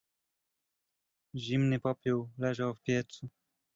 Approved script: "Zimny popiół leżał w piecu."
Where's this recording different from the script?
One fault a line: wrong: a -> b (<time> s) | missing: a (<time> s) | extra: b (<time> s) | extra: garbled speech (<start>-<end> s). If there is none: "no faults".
no faults